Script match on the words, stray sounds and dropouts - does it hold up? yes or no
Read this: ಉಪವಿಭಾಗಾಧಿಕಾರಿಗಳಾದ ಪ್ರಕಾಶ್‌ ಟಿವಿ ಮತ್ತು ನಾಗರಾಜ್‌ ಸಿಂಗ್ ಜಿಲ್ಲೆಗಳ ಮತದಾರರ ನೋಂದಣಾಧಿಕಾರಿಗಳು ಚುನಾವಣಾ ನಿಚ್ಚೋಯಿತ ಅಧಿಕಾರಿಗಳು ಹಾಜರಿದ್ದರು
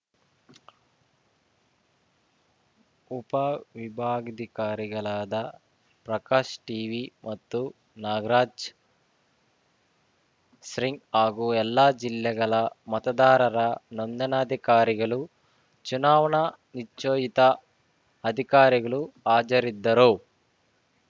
no